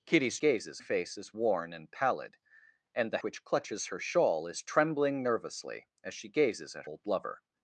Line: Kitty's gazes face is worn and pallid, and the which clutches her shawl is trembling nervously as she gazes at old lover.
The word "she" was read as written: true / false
true